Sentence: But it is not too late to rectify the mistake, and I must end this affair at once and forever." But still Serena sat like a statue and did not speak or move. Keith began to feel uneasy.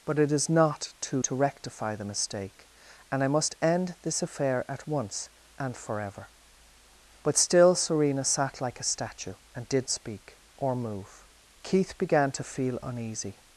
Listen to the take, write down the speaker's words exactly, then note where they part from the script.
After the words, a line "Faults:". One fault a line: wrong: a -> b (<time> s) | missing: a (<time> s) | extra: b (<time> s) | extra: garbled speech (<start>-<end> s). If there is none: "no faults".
But it is not too to rectify the mistake, and I must end this affair at once and forever." But still Serena sat like a statue and did speak or move. Keith began to feel uneasy.
Faults:
missing: late (1.2 s)
missing: not (9.9 s)